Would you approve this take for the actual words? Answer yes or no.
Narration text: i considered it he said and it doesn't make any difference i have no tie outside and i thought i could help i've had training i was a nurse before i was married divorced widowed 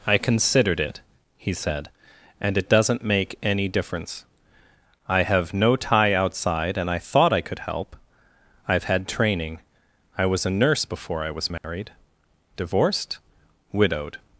yes